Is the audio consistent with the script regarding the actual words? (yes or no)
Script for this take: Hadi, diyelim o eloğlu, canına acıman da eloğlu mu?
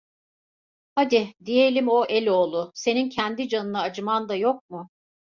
no